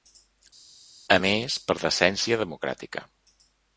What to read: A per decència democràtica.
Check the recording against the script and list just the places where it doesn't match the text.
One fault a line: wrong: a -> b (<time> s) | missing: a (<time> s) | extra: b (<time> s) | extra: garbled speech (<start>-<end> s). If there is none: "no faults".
extra: més (1.2 s)